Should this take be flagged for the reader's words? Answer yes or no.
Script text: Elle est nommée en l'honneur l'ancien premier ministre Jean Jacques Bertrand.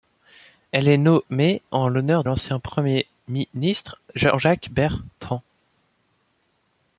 no